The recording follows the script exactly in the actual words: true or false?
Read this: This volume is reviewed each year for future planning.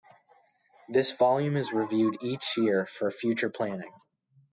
true